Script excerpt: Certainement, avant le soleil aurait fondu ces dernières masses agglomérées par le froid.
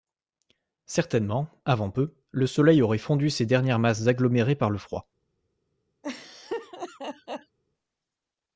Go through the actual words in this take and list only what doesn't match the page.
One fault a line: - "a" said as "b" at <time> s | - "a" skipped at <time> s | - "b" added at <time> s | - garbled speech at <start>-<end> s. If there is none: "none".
- "peu" added at 1.9 s